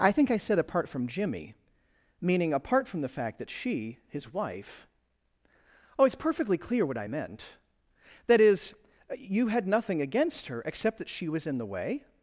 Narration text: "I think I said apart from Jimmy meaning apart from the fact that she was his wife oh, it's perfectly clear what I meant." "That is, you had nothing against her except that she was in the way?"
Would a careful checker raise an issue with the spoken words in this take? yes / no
yes